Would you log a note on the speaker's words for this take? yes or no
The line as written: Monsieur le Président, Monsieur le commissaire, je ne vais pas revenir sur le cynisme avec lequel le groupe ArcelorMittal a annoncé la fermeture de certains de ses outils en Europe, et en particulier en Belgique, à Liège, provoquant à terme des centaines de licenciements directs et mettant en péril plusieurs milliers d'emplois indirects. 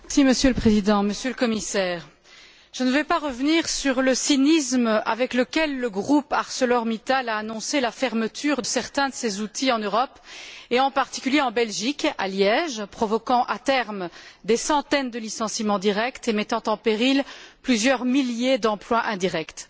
yes